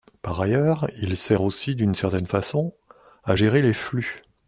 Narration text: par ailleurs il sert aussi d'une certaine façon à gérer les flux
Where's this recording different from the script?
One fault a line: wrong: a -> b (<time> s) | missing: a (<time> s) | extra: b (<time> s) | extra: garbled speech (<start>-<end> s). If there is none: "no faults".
no faults